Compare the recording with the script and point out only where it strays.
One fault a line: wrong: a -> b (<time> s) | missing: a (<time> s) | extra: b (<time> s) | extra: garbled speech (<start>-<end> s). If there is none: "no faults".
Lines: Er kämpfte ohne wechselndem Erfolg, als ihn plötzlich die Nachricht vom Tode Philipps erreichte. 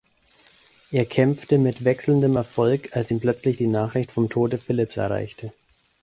wrong: ohne -> mit (1.6 s)